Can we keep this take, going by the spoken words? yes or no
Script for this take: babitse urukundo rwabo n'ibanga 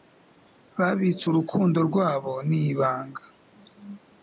yes